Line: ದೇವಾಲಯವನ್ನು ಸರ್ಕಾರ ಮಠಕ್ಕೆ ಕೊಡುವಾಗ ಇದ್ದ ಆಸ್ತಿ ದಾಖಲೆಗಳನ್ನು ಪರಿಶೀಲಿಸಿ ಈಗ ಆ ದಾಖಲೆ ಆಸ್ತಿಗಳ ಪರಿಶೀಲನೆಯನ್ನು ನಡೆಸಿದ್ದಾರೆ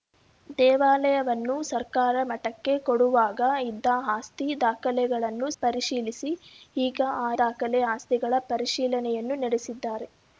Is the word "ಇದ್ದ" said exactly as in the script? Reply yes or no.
yes